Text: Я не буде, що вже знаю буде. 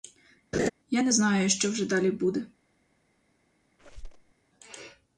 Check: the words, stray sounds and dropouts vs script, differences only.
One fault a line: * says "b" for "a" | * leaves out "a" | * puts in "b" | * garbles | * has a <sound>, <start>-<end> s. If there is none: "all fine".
* has a laugh, 0.5-0.7 s
* says "знаю" for "буде"
* says "далі" for "знаю"
* has a squeak, 3.8-4.3 s